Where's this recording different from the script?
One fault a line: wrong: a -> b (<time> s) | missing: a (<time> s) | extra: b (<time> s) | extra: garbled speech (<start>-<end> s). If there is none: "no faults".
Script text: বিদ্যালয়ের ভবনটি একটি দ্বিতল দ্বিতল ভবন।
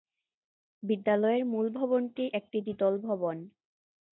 extra: মূল (1.4 s)
missing: দ্বিতল (2.9 s)